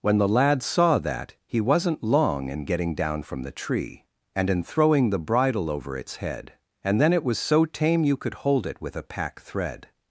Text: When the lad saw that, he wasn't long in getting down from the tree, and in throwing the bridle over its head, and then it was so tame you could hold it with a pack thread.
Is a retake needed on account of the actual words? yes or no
no